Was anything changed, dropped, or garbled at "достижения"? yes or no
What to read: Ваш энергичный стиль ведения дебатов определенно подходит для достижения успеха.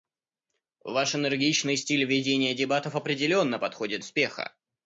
yes